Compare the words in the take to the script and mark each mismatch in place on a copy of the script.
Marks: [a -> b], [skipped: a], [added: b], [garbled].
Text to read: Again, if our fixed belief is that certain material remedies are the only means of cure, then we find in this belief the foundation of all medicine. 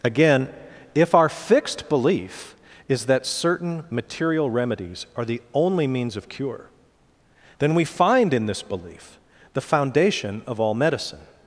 Again, if our fixed belief is that certain material remedies are the only means of cure, then we find in this belief the foundation of all medicine.